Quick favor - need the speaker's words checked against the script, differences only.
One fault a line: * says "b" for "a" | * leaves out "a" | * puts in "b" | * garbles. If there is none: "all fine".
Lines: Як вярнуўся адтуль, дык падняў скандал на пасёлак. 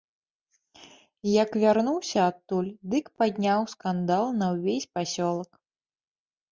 * puts in "ўвесь"